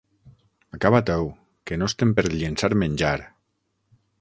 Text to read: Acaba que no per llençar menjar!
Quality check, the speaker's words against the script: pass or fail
fail